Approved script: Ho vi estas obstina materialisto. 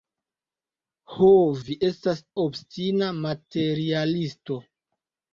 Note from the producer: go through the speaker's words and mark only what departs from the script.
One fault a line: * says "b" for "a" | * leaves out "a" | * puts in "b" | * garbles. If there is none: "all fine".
all fine